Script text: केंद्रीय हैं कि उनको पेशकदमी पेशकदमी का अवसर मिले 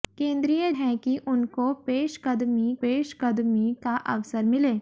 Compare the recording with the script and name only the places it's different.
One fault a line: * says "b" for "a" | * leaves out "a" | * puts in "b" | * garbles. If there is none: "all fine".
all fine